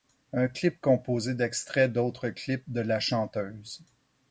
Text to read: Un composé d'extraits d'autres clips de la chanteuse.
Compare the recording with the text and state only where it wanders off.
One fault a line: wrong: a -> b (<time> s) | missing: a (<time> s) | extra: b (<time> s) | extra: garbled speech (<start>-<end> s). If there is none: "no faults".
extra: clip (0.5 s)